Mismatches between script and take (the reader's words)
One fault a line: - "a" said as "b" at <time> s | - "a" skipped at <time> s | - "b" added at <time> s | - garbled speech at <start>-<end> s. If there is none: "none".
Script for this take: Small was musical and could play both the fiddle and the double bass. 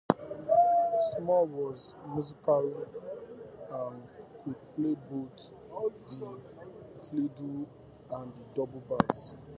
none